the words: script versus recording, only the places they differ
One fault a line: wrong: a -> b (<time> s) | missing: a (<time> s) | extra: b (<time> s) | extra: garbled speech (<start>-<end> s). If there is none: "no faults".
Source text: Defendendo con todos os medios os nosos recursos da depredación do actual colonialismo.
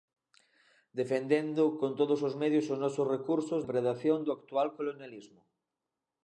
missing: da (3.6 s)